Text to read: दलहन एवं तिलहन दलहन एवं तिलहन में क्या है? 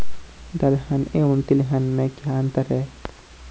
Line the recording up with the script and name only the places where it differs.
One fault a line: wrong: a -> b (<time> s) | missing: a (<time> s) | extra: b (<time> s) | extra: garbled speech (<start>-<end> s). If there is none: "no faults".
missing: दलहन एवं तिलहन (1.8 s)
extra: अंतर (2.4 s)